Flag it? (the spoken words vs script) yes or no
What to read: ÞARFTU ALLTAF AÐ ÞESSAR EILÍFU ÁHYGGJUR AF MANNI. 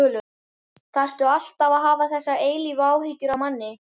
yes